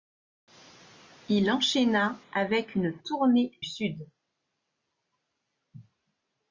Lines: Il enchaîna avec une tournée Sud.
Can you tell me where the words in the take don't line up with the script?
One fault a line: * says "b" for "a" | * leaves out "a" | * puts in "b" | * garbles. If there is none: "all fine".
all fine